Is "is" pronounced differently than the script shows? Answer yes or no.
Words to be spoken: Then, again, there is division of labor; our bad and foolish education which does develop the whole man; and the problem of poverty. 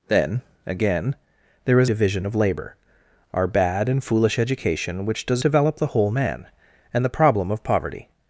no